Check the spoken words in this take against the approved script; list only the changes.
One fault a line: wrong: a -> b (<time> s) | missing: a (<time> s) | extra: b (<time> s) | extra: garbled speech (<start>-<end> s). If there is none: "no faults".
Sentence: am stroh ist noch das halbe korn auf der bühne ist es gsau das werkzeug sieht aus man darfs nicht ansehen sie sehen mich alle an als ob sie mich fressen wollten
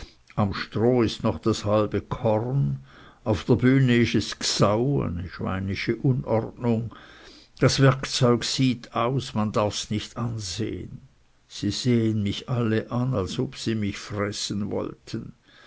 no faults